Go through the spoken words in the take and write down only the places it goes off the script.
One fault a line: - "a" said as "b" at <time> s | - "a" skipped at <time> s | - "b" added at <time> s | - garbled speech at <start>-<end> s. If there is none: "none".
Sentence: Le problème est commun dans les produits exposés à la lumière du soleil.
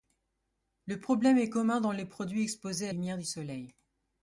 - "la" skipped at 2.9 s